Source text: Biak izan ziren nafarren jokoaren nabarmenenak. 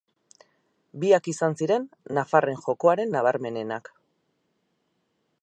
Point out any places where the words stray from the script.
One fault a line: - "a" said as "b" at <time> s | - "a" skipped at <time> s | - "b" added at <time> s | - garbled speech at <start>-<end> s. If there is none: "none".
none